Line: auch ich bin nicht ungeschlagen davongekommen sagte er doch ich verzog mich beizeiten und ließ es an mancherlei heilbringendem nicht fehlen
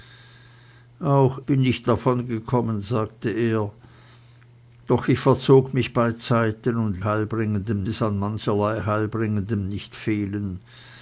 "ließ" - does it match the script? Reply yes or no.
no